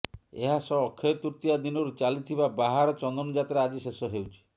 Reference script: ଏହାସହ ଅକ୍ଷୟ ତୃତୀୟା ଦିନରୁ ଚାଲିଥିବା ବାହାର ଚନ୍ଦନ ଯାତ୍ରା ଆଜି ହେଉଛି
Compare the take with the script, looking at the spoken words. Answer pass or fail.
fail